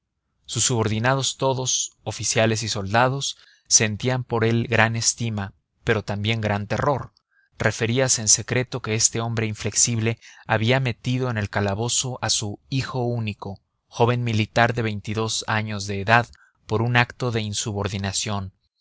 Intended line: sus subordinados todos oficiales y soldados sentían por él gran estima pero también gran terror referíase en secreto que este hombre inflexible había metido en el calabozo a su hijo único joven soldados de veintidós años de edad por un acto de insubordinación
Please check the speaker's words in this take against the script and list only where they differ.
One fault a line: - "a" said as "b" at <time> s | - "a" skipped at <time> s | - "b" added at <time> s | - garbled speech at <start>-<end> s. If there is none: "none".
- "soldados" said as "militar" at 14.2 s